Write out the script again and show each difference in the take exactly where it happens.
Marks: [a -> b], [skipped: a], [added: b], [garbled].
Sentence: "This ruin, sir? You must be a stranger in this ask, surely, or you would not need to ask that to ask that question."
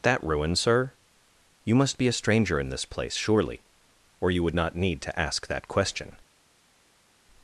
["This -> That] ruin, sir? You must be a stranger in this [ask, -> place] surely, or you would not need to ask that [skipped: to ask that] question."